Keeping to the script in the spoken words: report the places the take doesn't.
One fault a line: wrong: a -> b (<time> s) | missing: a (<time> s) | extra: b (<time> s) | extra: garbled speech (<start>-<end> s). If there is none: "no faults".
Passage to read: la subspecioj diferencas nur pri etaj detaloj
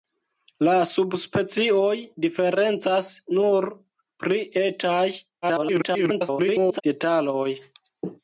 extra: garbled speech (5.4-6.8 s)